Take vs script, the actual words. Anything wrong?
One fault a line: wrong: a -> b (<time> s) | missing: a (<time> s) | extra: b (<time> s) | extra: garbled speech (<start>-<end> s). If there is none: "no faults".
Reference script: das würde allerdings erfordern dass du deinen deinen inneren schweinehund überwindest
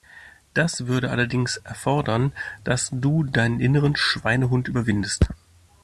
missing: deinen (3.6 s)